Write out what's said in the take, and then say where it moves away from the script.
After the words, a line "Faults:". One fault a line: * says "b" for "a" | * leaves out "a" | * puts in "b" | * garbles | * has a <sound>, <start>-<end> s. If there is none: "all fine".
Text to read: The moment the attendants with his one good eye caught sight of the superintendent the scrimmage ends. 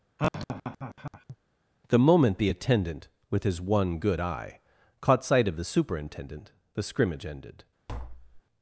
The moment the attendant with his one good eye caught sight of the superintendent the scrimmage ended.
Faults:
* has a laugh, 0.2-1.4 s
* says "attendant" for "attendants"
* says "ended" for "ends"
* has a tap, 7.9-8.4 s